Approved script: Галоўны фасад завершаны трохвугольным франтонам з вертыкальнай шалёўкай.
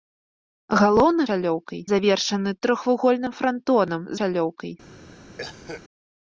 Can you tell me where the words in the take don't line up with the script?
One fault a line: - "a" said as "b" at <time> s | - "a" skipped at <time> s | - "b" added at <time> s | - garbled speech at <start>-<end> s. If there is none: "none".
- "фасад" said as "шалёўкай" at 1.3 s
- "з вертыкальнай" skipped at 4.0 s